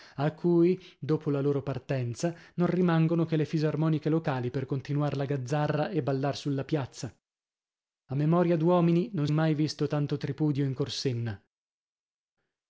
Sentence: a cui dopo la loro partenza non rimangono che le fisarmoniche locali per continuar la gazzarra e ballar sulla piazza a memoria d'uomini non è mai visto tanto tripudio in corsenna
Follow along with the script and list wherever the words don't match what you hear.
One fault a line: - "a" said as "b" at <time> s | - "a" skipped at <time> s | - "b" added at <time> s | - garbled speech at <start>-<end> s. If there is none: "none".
none